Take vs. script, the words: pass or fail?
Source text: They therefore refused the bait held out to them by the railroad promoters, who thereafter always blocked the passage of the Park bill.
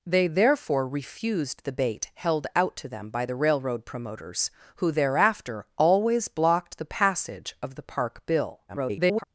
fail